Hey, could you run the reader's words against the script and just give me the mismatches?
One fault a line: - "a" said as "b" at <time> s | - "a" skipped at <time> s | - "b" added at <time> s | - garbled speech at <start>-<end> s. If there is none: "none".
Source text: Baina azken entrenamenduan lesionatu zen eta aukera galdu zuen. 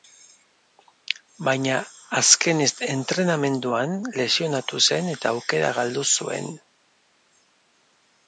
none